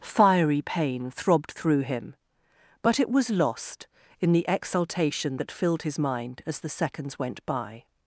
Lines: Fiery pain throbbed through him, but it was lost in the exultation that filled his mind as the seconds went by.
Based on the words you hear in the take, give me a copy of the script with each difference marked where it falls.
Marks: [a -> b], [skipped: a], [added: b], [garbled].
Fiery pain throbbed through him, but it was lost in the exultation that filled his mind as the seconds went by.